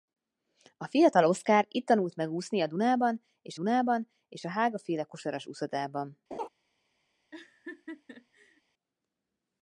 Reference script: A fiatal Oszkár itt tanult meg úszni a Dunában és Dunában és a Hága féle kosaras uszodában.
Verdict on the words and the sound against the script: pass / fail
fail